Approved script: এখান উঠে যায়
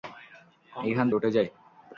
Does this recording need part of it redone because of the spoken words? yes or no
no